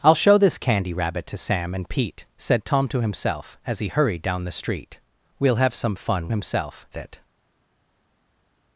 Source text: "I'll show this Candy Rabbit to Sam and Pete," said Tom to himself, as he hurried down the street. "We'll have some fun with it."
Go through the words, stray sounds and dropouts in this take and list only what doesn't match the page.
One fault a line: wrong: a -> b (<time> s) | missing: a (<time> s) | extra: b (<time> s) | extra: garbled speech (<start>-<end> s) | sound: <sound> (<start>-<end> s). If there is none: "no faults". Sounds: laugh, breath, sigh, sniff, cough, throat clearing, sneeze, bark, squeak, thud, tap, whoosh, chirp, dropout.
wrong: with -> himself (6.3 s)